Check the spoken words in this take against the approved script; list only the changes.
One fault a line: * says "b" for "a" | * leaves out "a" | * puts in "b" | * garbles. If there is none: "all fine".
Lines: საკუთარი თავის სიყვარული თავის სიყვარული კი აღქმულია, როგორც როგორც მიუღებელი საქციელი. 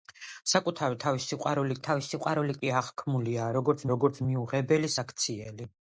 all fine